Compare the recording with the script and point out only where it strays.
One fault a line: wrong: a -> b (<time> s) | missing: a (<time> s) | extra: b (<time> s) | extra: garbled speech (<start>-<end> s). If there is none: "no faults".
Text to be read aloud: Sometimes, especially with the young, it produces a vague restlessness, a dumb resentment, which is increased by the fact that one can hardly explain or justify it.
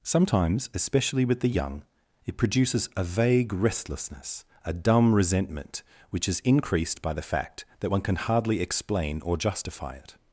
no faults